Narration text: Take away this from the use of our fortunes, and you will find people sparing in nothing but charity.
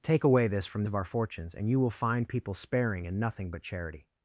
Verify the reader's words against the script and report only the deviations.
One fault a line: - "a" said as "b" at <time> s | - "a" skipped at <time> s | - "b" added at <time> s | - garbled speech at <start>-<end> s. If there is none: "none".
- "the use" skipped at 0.8 s